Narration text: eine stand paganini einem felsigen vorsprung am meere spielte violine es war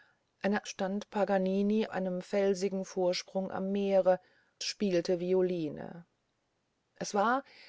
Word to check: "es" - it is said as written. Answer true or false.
true